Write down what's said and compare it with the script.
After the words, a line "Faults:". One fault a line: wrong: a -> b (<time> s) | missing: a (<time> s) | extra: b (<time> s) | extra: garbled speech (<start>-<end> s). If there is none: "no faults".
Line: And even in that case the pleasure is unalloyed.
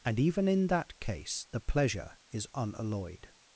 And even in that case the pleasure is unalloyed.
Faults:
no faults